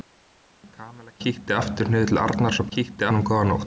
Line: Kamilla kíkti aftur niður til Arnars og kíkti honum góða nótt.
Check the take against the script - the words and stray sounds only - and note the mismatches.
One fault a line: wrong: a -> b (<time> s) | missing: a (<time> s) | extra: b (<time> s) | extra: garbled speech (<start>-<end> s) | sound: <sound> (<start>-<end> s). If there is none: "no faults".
no faults